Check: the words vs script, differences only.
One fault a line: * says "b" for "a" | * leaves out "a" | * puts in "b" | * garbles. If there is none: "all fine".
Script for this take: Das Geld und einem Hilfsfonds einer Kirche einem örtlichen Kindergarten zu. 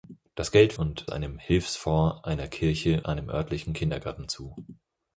all fine